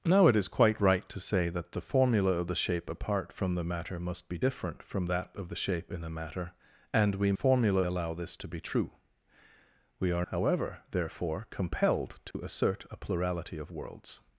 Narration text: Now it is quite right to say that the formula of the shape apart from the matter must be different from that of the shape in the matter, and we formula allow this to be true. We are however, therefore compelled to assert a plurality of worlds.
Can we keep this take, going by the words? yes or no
yes